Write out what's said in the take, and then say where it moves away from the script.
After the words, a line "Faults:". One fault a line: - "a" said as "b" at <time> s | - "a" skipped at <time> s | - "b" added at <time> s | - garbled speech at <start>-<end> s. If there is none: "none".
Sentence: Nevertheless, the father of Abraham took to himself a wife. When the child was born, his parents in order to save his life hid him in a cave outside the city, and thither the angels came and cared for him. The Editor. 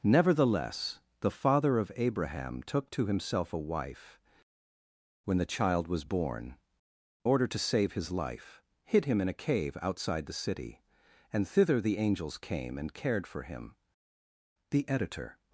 Nevertheless, the father of Abraham took to himself a wife. When the child was born, order to save his life hid him in a cave outside the city, and thither the angels came and cared for him. The Editor.
Faults:
- "his parents in" skipped at 6.6 s